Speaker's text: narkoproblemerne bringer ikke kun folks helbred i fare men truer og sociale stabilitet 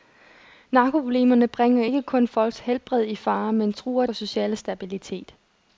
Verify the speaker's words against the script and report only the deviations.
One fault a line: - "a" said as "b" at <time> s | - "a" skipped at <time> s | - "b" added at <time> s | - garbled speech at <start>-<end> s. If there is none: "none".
none